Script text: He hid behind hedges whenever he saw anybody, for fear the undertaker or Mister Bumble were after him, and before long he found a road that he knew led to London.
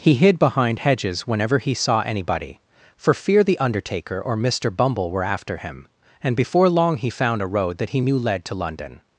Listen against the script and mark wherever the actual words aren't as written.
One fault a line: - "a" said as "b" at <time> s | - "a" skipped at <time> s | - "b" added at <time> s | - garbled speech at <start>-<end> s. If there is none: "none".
none